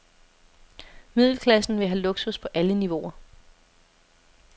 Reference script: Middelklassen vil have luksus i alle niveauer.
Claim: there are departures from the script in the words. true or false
true